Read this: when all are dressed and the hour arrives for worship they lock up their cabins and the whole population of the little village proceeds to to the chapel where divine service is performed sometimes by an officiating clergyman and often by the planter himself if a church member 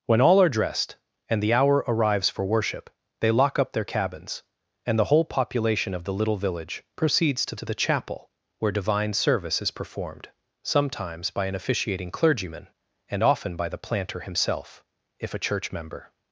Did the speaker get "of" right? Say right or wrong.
right